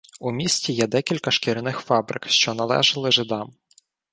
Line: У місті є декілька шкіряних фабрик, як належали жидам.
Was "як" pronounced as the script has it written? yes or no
no